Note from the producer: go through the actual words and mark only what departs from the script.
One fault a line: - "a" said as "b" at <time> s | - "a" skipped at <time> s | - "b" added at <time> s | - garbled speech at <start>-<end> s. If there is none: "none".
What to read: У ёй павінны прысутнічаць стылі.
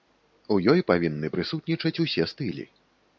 - "усе" added at 2.1 s